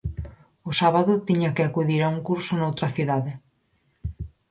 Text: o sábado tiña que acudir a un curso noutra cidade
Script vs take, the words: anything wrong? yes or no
no